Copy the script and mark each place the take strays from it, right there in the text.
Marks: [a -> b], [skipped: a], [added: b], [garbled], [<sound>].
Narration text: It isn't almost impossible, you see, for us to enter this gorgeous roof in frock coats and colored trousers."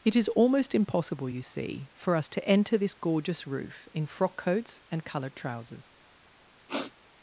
It [isn't -> is] almost impossible, you see, for us to enter this gorgeous roof in frock coats and colored trousers." [sniff]